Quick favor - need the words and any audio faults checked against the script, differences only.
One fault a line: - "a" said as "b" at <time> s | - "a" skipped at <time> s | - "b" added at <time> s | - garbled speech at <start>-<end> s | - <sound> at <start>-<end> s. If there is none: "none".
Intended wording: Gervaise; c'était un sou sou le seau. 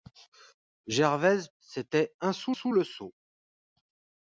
none